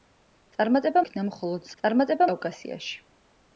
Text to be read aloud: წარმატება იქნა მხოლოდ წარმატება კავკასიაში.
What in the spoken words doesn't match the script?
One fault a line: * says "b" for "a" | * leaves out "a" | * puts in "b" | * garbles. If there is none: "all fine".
all fine